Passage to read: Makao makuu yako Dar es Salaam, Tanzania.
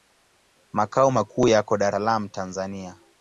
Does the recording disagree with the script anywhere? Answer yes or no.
yes